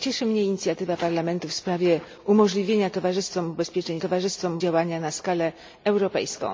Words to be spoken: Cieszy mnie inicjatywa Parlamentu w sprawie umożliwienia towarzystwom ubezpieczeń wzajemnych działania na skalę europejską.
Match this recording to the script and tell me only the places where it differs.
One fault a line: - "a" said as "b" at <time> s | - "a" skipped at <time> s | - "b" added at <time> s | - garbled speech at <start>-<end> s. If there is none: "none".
- "wzajemnych" said as "towarzystwom" at 4.0 s